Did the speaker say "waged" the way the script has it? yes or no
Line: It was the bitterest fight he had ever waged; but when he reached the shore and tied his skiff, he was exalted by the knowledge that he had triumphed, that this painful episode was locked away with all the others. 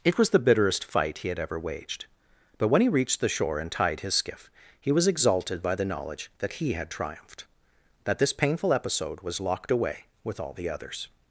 yes